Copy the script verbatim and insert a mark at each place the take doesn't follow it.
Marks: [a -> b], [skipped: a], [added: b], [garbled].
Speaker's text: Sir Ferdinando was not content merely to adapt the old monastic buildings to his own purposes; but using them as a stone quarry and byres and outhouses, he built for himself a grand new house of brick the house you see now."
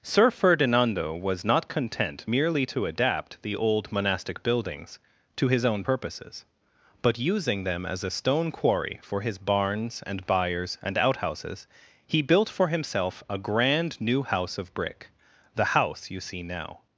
Sir Ferdinando was not content merely to adapt the old monastic buildings to his own purposes; but using them as a stone quarry [added: for his barns] and byres and outhouses, he built for himself a grand new house of brick the house you see now."